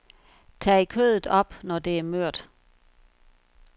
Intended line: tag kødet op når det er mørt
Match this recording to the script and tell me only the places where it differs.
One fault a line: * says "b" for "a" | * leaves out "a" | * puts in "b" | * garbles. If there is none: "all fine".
all fine